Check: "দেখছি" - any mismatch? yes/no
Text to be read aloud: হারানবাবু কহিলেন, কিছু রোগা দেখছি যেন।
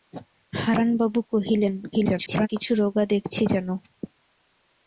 no